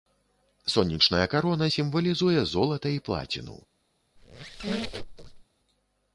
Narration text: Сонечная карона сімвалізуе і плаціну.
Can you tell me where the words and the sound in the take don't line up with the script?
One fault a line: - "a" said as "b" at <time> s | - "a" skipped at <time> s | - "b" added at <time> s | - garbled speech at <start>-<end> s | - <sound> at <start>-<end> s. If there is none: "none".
- "золата" added at 2.5 s
- squeak at 4.2-5.4 s